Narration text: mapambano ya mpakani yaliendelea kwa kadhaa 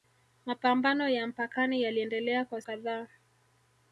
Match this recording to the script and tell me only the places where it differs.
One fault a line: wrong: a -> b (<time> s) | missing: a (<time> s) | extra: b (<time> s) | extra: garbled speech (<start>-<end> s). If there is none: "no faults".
no faults